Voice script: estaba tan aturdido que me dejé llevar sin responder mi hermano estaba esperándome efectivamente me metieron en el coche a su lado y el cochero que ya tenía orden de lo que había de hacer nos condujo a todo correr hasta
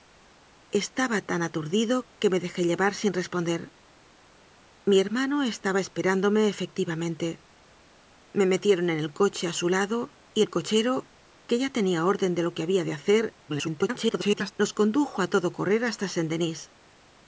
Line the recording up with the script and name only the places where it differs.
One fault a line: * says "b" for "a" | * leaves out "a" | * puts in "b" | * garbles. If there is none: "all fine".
* garbles